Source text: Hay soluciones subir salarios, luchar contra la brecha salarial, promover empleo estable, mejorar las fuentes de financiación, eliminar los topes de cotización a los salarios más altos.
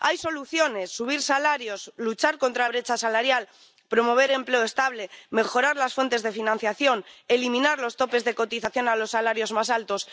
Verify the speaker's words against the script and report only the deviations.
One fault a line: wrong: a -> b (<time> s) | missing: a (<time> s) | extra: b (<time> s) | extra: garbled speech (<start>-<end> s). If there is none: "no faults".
missing: la (2.7 s)